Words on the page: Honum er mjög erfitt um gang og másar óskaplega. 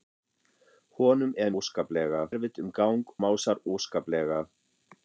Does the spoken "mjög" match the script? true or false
false